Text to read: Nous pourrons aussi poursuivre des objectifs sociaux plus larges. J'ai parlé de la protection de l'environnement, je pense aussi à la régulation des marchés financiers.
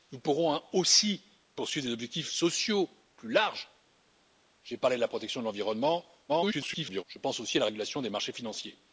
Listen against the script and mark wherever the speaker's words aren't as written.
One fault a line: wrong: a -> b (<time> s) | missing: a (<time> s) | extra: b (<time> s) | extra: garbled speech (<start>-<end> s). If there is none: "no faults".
extra: garbled speech (6.3-7.0 s)